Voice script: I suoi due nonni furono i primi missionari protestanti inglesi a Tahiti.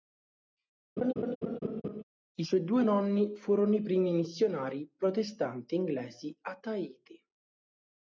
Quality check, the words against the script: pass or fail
pass